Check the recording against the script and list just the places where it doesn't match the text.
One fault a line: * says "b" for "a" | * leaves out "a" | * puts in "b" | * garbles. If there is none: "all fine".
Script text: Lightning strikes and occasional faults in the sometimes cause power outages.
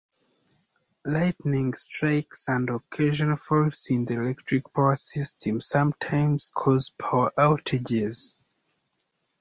* puts in "electric power system"